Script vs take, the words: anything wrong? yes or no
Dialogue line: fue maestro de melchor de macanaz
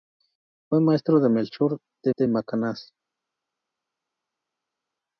yes